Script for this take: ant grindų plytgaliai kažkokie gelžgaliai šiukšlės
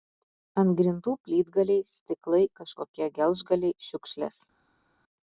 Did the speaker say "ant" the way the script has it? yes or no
yes